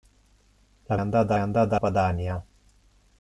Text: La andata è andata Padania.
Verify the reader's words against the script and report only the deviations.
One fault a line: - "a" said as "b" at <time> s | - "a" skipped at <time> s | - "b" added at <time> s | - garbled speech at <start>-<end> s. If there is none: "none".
none